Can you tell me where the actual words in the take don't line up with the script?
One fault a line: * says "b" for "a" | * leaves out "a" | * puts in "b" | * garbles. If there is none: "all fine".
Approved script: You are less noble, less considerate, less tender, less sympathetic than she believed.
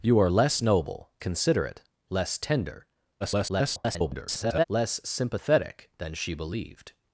* leaves out "less"
* garbles